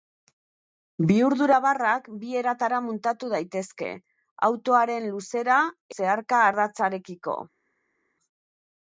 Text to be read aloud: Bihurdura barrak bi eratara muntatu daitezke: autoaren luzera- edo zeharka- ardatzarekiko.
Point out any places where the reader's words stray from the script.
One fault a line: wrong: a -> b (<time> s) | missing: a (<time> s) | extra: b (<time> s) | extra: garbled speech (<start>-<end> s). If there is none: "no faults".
missing: edo (5.6 s)